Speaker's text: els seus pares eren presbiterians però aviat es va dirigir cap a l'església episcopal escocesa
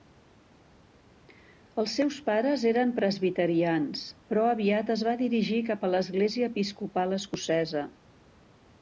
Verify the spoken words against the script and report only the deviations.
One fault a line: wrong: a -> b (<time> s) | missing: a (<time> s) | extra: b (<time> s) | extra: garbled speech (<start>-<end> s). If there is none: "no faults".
no faults